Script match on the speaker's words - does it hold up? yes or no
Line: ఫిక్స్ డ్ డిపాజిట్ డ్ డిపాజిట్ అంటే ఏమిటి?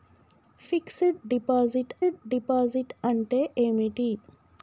yes